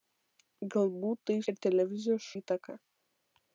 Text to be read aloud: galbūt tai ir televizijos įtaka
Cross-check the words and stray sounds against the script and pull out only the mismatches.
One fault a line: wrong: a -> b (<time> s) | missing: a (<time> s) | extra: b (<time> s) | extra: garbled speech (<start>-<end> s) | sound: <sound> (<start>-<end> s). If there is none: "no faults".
no faults